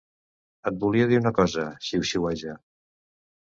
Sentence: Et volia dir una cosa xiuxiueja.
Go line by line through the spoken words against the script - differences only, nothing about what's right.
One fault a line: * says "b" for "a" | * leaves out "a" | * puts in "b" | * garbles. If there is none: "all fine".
all fine